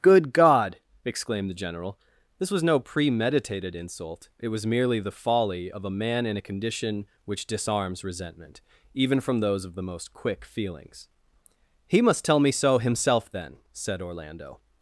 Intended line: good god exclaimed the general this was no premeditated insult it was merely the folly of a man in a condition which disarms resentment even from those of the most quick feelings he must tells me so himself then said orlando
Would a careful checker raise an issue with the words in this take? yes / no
yes